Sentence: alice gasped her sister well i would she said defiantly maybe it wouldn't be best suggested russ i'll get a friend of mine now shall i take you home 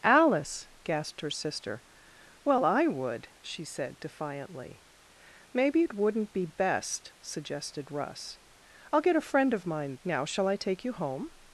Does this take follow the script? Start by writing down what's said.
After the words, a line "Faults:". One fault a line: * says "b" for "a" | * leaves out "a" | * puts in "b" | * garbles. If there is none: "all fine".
alice gasped her sister well i would she said defiantly maybe it wouldn't be best suggested russ i'll get a friend of mine now shall i take you home
Faults:
all fine